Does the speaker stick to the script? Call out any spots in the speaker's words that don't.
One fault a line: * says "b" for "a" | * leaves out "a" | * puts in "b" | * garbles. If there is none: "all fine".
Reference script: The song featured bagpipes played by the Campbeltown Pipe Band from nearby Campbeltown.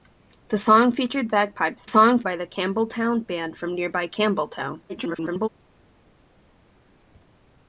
* says "song" for "played"
* leaves out "Pipe"
* garbles